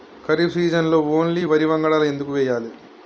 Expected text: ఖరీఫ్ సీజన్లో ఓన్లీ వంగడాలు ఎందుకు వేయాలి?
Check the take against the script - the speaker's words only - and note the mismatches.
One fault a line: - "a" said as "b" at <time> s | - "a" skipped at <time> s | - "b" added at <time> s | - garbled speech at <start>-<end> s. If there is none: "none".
- "వరి" added at 1.4 s